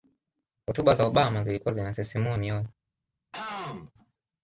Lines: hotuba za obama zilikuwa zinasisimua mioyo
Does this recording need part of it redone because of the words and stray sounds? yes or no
yes